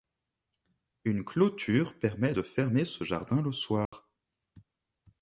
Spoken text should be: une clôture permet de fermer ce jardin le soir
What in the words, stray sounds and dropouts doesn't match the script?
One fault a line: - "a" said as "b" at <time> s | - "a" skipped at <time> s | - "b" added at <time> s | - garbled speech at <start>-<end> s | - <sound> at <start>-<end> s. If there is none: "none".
- dropout at 3.9-3.9 s